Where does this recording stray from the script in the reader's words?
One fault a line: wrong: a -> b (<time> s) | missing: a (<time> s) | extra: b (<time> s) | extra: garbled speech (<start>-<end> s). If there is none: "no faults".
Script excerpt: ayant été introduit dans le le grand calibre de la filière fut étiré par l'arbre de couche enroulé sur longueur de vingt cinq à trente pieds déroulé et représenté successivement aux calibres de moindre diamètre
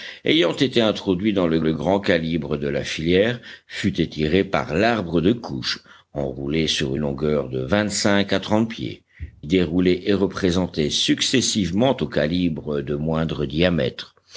no faults